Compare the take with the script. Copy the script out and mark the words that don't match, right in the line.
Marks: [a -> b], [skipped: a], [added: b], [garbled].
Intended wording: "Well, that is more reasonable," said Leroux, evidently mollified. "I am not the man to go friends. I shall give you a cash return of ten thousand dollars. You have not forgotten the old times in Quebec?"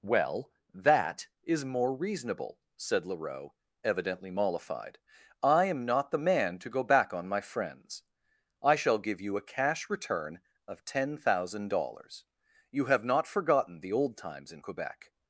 "Well, that is more reasonable," said Leroux, evidently mollified. "I am not the man to go [added: back on my] friends. I shall give you a cash return of ten thousand dollars. You have not forgotten the old times in Quebec?"